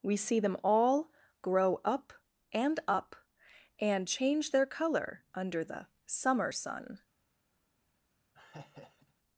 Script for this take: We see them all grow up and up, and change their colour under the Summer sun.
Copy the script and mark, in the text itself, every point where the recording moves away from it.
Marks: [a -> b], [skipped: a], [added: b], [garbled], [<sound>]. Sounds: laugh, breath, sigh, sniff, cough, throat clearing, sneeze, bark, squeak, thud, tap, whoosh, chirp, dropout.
We see them all grow up and up, and change their colour under the Summer sun. [laugh]